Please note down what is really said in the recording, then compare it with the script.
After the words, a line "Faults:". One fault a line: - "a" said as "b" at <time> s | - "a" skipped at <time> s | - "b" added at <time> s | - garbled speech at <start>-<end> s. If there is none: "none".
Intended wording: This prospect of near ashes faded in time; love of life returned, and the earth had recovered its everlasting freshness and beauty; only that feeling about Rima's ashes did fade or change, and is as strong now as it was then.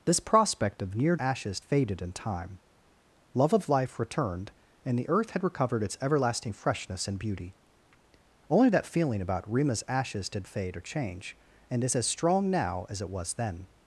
This prospect of near ashes faded in time; love of life returned, and the earth had recovered its everlasting freshness and beauty; only that feeling about Rima's ashes did fade or change, and is as strong now as it was then.
Faults:
none